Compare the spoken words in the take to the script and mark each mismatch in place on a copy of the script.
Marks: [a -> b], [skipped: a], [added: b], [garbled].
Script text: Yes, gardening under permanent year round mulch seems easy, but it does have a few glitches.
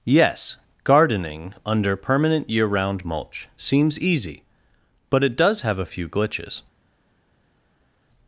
Yes, gardening under permanent year round mulch seems easy, but it does have a few glitches.